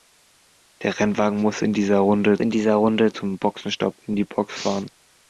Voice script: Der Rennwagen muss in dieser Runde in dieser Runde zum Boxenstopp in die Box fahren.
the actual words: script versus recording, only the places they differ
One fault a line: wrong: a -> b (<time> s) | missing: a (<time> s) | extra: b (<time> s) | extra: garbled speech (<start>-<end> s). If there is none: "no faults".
no faults